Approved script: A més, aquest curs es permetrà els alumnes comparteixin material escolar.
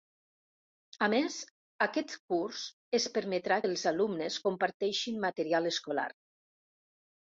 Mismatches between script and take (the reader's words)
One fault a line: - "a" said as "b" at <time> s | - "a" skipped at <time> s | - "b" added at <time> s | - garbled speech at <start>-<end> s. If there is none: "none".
none